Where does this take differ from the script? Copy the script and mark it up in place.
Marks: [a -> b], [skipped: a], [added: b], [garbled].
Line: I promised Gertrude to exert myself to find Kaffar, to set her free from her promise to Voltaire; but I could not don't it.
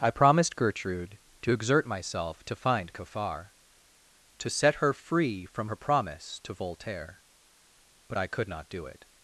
I promised Gertrude to exert myself to find Kaffar, to set her free from her promise to Voltaire; but I could not [don't -> do] it.